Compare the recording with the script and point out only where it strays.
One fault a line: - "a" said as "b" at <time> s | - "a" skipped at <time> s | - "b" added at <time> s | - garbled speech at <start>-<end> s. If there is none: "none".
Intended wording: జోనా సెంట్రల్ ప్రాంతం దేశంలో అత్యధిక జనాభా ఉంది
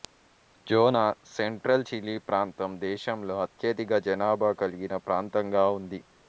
- "చిలీ" added at 1.9 s
- "కలిగిన ప్రాంతంగా" added at 4.6 s